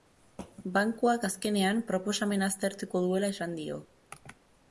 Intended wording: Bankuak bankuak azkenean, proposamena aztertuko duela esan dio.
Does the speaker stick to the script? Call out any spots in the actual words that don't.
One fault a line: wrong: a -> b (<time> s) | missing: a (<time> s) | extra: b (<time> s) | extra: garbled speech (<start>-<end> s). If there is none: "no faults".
missing: bankuak (1.3 s)